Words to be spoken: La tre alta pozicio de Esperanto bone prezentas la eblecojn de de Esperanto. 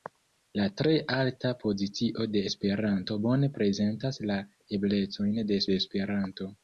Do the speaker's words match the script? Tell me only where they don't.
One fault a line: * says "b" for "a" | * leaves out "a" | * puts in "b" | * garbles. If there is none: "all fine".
all fine